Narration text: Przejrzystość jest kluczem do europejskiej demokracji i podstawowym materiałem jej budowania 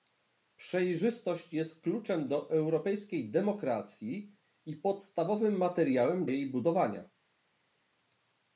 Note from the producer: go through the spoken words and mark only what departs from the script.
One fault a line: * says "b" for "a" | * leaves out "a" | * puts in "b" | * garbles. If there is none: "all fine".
all fine